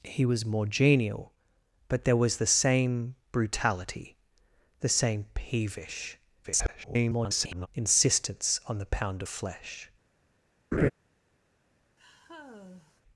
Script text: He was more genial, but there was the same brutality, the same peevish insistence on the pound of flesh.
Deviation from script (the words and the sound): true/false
true